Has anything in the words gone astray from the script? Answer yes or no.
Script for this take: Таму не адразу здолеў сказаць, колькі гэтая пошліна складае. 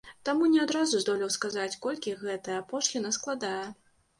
no